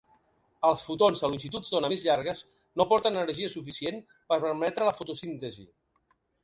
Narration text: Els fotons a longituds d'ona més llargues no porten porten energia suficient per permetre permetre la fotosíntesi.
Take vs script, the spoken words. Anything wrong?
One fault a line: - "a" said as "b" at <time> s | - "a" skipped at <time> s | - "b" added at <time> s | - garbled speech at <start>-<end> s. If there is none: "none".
- "porten" skipped at 3.2 s
- "permetre" skipped at 4.9 s